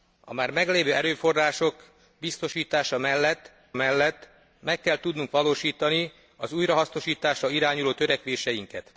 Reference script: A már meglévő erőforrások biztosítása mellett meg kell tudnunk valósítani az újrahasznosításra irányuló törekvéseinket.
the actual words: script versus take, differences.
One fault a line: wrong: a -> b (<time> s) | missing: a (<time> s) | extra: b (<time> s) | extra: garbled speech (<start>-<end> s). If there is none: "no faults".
extra: mellett (3.7 s)